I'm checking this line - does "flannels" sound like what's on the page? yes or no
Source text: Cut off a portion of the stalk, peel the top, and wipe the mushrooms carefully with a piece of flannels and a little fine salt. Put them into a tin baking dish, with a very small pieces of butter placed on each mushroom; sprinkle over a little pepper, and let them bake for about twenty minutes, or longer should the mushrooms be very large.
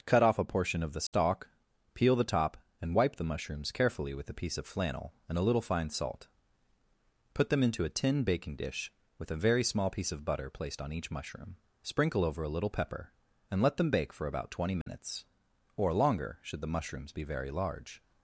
no